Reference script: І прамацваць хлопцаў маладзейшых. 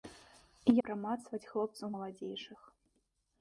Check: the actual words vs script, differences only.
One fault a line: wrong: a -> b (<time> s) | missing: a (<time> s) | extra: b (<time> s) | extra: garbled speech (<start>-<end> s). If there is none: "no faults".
no faults